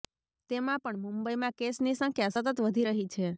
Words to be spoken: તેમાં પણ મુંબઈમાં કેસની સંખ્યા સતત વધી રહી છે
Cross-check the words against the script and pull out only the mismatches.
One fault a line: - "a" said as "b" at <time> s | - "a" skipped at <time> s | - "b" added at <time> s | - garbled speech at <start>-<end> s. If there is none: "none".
none